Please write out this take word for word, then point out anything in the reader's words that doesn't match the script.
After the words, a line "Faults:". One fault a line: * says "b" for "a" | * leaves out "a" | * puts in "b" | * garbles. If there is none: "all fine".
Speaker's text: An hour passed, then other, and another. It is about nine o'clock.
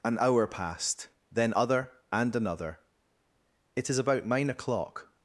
An hour passed, then other, and another. It is about nine o'clock.
Faults:
all fine